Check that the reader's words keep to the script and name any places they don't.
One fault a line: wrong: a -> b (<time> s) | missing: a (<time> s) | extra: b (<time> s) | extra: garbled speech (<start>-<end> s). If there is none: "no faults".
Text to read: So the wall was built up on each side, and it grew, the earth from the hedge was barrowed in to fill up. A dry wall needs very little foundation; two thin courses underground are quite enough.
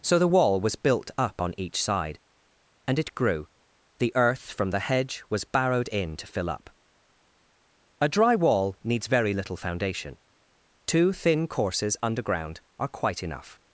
no faults